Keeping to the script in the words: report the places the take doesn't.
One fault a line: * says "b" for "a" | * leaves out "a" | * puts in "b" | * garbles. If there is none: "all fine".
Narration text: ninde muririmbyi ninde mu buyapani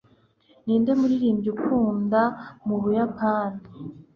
* says "ukunda" for "ninde"